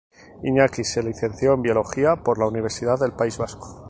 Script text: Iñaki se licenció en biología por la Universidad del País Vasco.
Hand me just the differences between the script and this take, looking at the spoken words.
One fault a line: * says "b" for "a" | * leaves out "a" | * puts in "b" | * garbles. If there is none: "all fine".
all fine